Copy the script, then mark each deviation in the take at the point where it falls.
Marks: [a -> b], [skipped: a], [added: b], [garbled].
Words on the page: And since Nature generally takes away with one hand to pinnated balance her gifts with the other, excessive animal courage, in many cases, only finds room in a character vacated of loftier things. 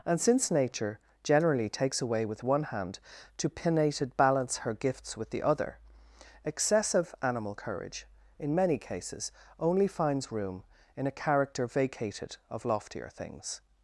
And since Nature generally takes away with one hand to pinnated balance her gifts with the other, excessive animal courage, in many cases, only finds room in a character vacated of loftier things.